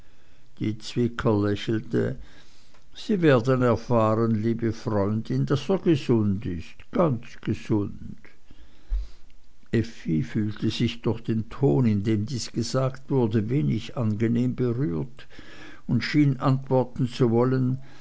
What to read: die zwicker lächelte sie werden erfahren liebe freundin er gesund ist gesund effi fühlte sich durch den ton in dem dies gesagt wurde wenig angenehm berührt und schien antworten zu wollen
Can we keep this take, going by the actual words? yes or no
no